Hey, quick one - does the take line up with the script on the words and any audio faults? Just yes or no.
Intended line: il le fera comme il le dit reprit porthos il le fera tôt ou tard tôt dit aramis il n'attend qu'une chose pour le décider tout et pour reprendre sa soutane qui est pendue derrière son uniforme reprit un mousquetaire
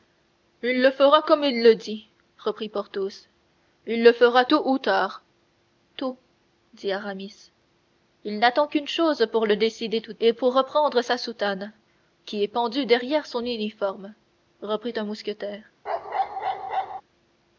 no